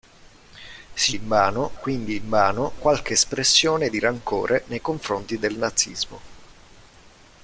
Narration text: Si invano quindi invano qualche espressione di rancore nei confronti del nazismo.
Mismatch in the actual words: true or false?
false